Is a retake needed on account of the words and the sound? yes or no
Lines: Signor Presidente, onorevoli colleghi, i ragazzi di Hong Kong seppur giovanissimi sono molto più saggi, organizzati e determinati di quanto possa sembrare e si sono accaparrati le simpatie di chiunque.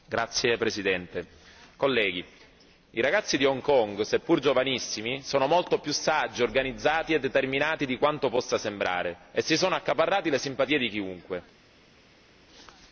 no